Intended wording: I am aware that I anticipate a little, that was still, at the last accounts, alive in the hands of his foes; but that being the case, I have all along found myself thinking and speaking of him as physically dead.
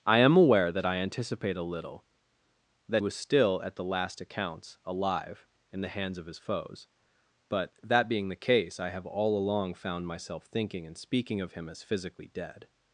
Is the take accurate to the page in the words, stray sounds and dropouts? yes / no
yes